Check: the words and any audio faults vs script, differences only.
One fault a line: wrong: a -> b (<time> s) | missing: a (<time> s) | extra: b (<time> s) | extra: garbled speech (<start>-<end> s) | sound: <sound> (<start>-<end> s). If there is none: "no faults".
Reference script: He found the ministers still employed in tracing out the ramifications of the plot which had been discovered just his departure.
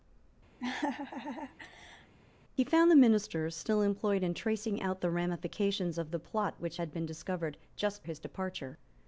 sound: laugh (0.6-2.1 s)